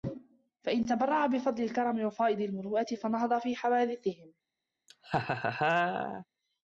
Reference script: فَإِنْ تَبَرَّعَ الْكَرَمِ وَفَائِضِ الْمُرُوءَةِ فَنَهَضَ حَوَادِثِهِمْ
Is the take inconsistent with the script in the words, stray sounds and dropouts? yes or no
yes